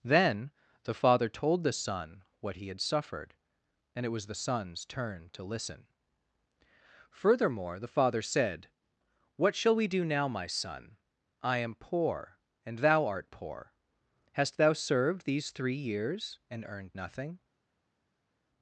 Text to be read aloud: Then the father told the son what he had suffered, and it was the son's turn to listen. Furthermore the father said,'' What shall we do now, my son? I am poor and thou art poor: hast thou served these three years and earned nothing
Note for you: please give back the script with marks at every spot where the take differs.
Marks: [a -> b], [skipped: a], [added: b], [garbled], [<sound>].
Then the father told the son what he had suffered, and it was the son's turn to listen. Furthermore the father said,'' What shall we do now, my son? I am poor and thou art poor: hast thou served these three years and earned nothing